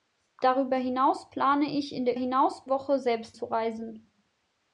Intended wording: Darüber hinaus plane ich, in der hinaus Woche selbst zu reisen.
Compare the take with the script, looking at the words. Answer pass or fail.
pass